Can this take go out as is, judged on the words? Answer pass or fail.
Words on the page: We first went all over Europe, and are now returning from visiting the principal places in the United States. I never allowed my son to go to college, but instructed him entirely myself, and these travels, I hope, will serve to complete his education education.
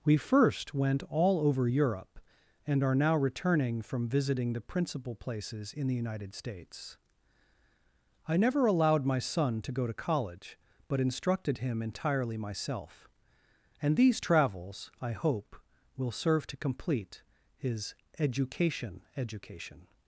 pass